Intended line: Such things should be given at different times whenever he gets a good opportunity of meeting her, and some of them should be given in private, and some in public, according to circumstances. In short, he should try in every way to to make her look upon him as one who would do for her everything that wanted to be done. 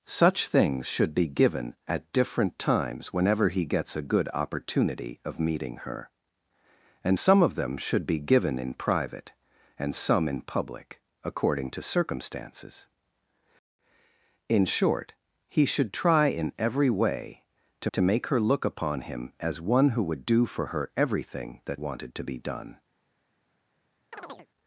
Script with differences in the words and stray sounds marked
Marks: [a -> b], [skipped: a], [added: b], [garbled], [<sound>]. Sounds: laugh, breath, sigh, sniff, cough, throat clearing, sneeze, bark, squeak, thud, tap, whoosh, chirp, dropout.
Such things should be given at different times whenever he gets a good opportunity of meeting her, and some of them should be given in private, and some in public, according to circumstances. In short, he should try in every way to to make her look upon him as one who would do for her everything that wanted to be done. [chirp]